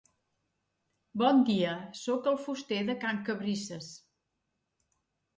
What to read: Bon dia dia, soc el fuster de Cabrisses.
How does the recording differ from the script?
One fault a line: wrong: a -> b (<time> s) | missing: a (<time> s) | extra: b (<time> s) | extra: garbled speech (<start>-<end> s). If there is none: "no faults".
missing: dia (1.7 s)
extra: can (3.0 s)